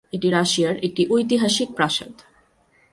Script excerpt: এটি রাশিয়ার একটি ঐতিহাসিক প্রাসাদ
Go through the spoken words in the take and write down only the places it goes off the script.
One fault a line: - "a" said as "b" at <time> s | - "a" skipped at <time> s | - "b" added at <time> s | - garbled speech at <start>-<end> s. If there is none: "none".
none